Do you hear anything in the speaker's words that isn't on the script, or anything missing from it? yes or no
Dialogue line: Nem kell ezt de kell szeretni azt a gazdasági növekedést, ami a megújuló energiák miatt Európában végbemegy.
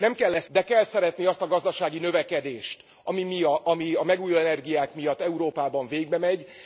no